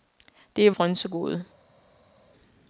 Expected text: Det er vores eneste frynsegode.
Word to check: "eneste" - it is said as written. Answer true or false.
false